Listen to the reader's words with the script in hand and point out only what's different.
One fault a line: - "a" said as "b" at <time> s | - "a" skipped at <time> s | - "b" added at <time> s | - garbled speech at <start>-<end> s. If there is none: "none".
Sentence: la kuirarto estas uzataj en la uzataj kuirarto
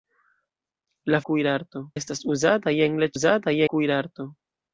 none